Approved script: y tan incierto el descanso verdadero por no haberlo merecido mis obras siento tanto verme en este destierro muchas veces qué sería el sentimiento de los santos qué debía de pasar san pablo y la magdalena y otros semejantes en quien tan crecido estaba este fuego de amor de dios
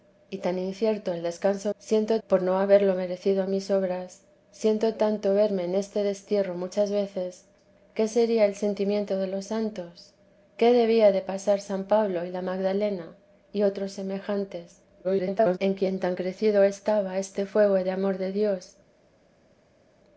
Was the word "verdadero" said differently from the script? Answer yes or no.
yes